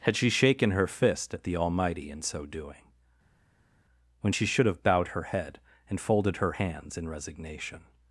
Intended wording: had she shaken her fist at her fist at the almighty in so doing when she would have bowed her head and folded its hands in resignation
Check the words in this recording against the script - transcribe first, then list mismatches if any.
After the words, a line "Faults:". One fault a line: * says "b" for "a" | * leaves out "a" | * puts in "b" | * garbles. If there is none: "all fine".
had she shaken her fist at the almighty in so doing when she should have bowed her head and folded her hands in resignation
Faults:
* leaves out "her fist at"
* says "should" for "would"
* says "her" for "its"